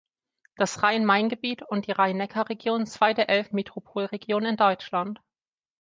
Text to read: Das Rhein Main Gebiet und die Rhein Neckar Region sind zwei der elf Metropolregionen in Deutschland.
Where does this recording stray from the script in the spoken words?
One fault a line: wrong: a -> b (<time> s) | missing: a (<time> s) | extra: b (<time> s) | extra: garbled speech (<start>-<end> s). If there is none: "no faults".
missing: sind (2.9 s)